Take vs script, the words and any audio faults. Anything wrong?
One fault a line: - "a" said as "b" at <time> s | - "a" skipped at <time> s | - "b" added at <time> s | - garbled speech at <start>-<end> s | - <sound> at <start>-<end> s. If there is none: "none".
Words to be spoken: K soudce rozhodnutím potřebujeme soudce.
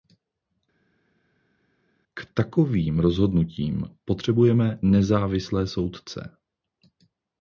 - "soudce" said as "takovým" at 2.3 s
- "nezávislé" added at 4.8 s